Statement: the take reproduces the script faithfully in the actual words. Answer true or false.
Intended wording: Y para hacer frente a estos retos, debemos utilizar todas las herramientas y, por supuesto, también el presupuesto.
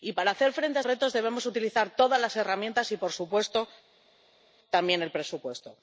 false